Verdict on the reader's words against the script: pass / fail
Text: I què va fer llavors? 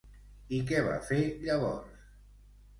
pass